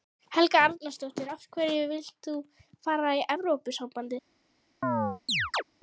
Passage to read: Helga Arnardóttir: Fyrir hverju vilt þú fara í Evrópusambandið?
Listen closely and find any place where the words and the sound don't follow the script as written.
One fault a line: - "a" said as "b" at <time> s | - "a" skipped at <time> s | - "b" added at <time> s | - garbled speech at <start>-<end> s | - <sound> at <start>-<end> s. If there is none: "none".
- "Fyrir" said as "Af" at 1.3 s
- chirp at 4.8-5.6 s